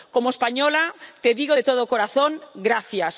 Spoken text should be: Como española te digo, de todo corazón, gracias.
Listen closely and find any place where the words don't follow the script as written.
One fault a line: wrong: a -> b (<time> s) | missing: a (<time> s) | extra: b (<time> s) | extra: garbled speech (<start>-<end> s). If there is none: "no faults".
no faults